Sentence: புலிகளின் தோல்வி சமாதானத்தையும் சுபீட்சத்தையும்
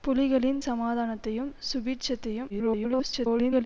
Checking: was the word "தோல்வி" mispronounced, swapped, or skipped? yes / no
yes